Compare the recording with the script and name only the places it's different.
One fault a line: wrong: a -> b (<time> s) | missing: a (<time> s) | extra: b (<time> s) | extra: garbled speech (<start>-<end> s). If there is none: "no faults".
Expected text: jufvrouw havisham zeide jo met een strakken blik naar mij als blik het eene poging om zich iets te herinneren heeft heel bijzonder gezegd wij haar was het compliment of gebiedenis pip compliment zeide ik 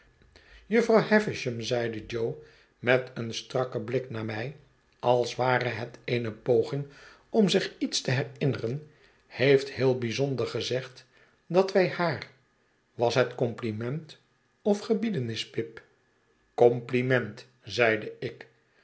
wrong: blik -> ware (5.4 s)
extra: dat (11.5 s)